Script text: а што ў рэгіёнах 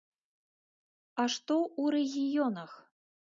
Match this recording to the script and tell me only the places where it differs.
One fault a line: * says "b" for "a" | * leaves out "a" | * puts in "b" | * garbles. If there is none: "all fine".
all fine